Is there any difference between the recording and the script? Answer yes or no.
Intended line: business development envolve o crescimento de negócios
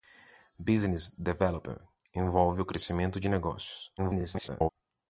yes